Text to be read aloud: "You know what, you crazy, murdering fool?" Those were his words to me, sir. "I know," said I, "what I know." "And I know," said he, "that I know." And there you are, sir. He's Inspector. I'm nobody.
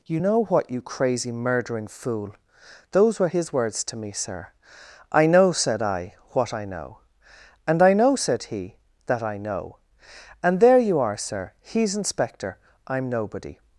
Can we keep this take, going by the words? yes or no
yes